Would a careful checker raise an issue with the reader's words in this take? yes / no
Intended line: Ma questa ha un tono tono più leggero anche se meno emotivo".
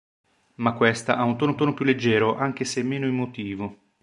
no